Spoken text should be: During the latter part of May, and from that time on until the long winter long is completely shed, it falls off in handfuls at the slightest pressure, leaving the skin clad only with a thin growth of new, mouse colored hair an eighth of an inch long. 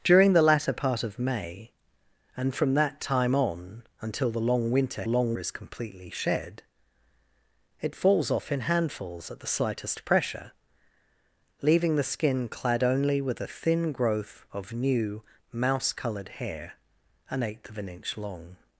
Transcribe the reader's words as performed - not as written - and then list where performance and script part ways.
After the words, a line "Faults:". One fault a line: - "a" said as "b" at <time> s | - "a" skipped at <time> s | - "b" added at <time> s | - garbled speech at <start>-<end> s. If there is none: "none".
During the latter part of May, and from that time on until the long winter long is completely shed, it falls off in handfuls at the slightest pressure, leaving the skin clad only with a thin growth of new, mouse colored hair an eighth of an inch long.
Faults:
none